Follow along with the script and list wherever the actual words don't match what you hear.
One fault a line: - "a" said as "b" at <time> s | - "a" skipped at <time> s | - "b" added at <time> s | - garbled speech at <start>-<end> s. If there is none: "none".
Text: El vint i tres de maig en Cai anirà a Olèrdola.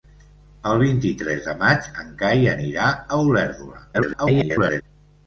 - garbled speech at 3.9-4.8 s